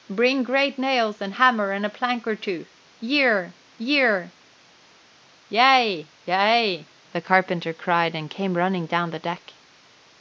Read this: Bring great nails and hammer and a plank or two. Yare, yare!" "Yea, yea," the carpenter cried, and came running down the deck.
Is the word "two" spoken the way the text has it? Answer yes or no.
yes